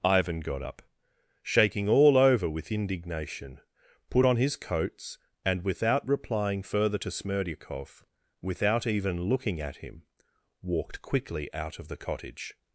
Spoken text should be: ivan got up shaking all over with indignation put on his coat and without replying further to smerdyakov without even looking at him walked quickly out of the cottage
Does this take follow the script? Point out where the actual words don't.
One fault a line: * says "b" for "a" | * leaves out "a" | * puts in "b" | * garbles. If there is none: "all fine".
* says "coats" for "coat"